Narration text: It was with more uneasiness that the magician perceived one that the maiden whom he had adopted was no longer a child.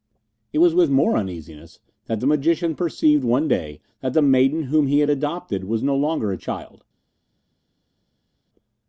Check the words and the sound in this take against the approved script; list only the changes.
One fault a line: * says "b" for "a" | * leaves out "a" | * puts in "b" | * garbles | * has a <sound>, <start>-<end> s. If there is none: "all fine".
* puts in "day"